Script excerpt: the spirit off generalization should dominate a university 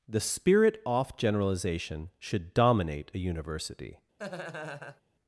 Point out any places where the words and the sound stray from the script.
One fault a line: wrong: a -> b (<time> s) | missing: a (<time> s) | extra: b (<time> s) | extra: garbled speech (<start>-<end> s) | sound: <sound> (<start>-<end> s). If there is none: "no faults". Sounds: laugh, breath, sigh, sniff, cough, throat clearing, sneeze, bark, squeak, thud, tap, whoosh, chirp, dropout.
sound: laugh (4.2-5.0 s)